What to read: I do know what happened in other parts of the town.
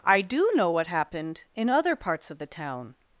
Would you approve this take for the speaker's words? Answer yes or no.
yes